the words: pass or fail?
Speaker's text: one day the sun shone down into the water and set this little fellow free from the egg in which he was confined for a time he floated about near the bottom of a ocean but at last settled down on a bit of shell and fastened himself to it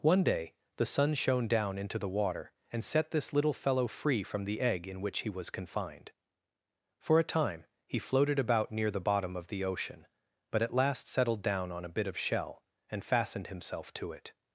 fail